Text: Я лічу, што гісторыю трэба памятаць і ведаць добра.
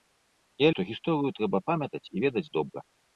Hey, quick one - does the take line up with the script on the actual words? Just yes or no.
no